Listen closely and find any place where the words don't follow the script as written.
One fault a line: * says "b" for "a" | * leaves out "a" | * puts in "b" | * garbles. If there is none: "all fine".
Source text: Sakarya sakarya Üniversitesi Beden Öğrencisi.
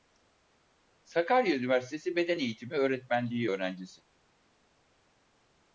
* leaves out "sakarya"
* puts in "Eğitimi Öğretmenliği"